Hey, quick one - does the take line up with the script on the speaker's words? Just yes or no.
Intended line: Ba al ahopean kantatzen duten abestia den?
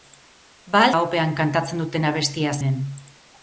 yes